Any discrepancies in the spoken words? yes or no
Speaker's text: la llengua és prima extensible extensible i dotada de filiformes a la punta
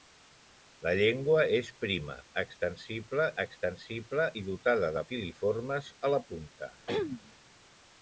no